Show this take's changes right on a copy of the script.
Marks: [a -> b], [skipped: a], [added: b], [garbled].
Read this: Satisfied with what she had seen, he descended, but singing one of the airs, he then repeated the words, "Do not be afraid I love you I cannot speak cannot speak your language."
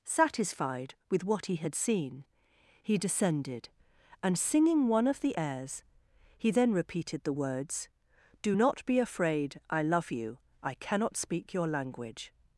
Satisfied with what [she -> he] had seen, he descended, [but -> and] singing one of the airs, he then repeated the words, "Do not be afraid I love you I cannot speak [skipped: cannot speak] your language."